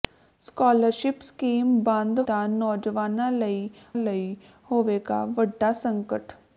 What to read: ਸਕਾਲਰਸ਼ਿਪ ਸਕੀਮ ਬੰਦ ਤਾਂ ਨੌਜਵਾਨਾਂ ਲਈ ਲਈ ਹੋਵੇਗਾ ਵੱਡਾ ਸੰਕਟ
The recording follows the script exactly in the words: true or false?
true